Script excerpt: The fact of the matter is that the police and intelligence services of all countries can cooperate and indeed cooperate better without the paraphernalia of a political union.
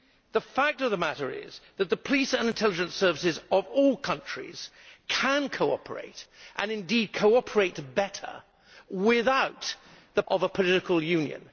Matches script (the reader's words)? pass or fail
fail